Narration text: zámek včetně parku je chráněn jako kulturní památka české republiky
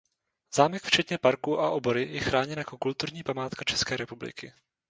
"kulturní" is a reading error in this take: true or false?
false